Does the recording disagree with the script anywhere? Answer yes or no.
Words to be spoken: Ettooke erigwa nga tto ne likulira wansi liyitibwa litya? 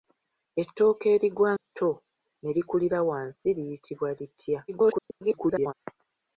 yes